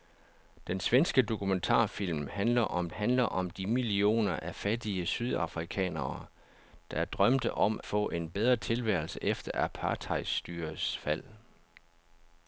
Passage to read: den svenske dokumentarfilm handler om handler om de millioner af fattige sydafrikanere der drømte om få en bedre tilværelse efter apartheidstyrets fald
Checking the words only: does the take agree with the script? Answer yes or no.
yes